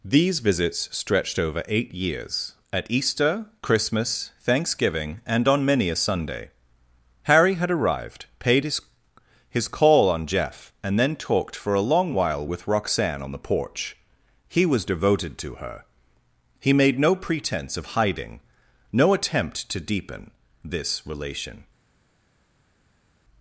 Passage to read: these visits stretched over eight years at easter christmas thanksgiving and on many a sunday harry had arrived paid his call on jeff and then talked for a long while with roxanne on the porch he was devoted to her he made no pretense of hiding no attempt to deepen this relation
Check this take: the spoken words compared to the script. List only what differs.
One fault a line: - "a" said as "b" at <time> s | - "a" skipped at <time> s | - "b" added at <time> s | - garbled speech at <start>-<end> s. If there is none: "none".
- "his" added at 9.5 s